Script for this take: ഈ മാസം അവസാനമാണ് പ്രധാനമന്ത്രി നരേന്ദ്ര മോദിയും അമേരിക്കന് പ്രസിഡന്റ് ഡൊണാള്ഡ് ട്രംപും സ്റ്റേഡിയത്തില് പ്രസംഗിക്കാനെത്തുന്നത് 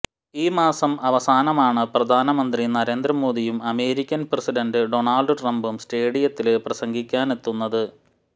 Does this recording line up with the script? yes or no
yes